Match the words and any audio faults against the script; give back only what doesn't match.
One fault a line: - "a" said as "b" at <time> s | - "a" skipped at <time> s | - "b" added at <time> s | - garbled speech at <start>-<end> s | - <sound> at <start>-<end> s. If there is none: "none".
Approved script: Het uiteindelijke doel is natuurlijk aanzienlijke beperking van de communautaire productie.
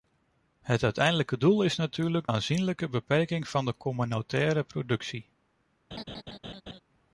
- laugh at 5.9-6.8 s